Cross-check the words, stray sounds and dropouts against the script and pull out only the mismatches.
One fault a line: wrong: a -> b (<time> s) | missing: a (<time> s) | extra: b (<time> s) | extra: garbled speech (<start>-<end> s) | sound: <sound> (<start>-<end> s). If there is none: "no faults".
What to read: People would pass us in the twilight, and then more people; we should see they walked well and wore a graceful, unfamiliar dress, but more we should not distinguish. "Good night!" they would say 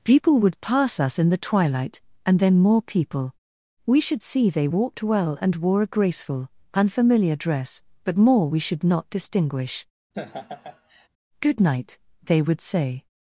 sound: laugh (10.1-11.1 s)